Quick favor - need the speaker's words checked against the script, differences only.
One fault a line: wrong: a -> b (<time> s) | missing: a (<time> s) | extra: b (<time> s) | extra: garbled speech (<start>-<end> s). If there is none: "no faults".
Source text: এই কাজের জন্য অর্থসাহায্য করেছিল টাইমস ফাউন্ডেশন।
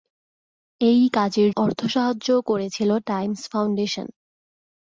missing: জন্য (1.5 s)